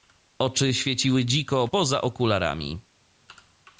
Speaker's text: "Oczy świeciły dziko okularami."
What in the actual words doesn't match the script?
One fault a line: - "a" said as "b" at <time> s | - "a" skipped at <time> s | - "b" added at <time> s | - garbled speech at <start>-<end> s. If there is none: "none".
- "poza" added at 1.6 s